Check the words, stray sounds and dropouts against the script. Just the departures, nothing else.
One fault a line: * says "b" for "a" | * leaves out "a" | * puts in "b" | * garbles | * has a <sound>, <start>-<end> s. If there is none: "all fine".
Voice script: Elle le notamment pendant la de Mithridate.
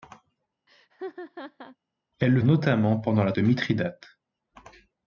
* has a laugh, 0.7-1.8 s